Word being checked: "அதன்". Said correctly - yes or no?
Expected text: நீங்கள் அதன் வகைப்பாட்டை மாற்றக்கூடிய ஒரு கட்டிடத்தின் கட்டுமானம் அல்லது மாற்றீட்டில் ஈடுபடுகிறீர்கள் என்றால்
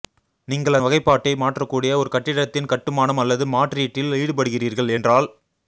no